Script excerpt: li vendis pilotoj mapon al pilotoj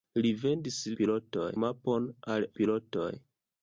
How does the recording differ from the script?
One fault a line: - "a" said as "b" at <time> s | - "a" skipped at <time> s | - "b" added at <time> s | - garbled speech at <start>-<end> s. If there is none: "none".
none